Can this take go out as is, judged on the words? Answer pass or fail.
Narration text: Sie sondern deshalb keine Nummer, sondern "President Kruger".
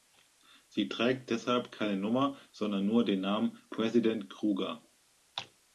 fail